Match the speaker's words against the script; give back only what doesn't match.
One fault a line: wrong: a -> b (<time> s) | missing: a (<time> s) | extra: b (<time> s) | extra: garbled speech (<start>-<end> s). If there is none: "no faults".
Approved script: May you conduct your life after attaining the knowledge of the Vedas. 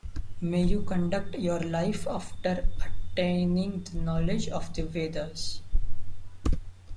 no faults